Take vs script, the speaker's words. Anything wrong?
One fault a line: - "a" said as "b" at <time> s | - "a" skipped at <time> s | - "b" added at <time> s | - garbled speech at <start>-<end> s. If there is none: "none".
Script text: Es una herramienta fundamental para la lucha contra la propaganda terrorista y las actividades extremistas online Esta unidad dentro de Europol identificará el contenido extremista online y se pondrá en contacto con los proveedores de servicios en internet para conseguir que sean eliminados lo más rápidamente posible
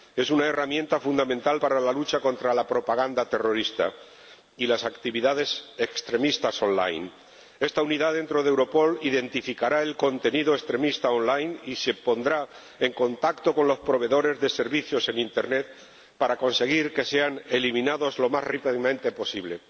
none